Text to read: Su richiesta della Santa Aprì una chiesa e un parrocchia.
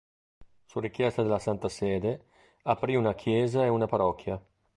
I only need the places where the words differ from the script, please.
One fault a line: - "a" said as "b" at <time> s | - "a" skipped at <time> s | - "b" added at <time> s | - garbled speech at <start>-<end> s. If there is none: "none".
- "Sede" added at 1.7 s
- "un" said as "una" at 3.7 s